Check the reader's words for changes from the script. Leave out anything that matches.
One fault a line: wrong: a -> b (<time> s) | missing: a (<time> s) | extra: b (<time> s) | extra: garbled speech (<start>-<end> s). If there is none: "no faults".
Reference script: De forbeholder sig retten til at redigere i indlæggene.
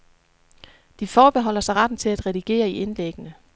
no faults